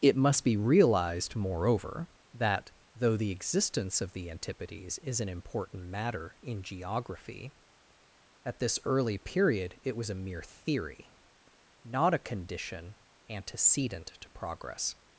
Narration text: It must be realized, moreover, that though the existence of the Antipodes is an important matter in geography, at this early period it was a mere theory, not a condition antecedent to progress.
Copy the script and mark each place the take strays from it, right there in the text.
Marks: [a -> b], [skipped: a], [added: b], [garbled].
It must be realized, moreover, that though the existence of the Antipodes is an important matter in geography, at this early period it was a mere theory, not a condition antecedent to progress.